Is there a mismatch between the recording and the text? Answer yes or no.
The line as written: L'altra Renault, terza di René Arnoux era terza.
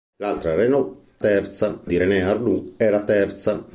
no